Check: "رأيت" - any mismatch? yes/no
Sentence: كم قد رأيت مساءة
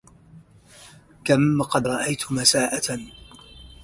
no